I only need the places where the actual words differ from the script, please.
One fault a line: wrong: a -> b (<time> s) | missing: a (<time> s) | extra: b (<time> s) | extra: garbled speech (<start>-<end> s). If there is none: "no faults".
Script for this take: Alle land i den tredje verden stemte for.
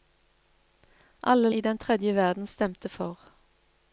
missing: land (1.5 s)